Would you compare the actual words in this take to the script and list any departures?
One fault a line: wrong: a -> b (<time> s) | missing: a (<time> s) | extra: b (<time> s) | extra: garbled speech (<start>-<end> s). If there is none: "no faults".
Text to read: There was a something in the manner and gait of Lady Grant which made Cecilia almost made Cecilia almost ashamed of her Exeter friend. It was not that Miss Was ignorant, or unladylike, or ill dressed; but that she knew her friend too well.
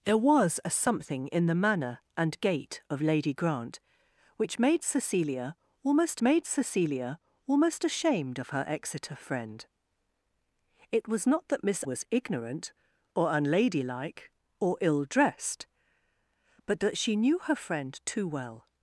no faults